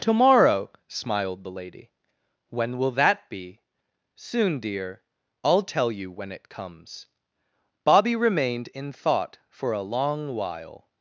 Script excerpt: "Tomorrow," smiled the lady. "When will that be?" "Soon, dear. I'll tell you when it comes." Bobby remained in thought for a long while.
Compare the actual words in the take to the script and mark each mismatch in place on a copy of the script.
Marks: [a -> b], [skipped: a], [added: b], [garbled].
"Tomorrow," smiled the lady. "When will that be?" "Soon, dear. I'll tell you when it comes." Bobby remained in thought for a long while.